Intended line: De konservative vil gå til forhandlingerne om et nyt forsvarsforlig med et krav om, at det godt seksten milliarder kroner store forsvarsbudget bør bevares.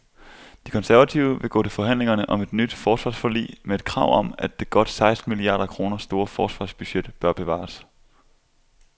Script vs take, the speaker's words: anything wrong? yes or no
no